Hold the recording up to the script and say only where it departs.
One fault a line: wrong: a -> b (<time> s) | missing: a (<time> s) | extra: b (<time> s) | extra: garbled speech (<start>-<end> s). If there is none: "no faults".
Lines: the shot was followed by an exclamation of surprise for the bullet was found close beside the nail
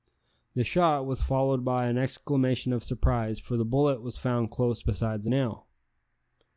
no faults